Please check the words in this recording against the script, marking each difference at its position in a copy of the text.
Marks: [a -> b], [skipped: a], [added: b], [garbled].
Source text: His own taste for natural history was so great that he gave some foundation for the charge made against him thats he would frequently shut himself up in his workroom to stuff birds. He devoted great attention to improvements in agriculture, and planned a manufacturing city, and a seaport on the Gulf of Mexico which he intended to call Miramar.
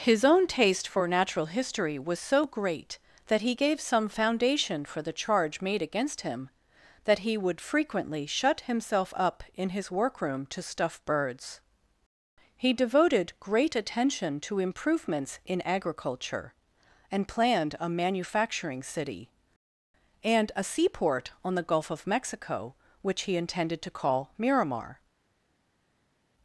His own taste for natural history was so great that he gave some foundation for the charge made against him [thats -> that] he would frequently shut himself up in his workroom to stuff birds. He devoted great attention to improvements in agriculture, and planned a manufacturing city, and a seaport on the Gulf of Mexico which he intended to call Miramar.